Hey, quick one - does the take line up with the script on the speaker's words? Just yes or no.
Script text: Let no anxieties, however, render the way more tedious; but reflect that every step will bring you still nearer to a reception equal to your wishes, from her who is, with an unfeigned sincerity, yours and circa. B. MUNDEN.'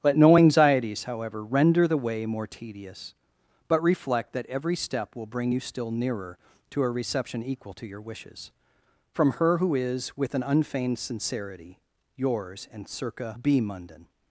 yes